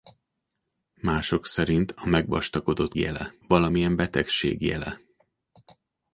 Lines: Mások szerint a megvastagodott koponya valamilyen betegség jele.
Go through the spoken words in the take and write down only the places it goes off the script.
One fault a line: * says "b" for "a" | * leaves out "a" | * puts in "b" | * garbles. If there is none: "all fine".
* says "jele" for "koponya"